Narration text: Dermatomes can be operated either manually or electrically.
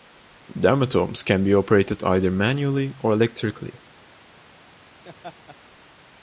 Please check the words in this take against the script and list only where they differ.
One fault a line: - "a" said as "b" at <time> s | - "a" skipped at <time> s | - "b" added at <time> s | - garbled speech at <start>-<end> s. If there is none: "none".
none